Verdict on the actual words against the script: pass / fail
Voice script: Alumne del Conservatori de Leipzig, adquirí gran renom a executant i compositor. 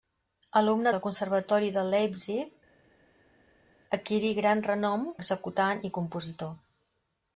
pass